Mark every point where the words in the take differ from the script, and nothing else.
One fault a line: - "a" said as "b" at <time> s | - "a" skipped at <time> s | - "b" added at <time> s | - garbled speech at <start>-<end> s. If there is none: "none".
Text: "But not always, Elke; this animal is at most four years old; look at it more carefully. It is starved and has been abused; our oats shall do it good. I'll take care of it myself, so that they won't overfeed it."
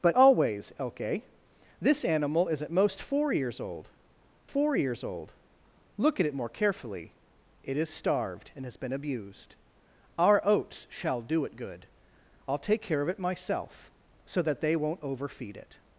- "not" skipped at 0.2 s
- "four years old" added at 4.4 s